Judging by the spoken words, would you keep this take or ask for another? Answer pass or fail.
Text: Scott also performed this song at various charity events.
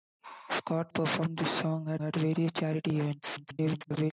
fail